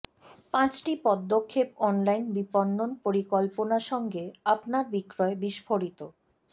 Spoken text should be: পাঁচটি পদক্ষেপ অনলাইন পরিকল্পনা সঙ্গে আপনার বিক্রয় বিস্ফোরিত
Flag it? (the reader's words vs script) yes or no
yes